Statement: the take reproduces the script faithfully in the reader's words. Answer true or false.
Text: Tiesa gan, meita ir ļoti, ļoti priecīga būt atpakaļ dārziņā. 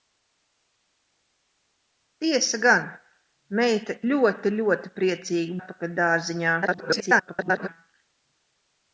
false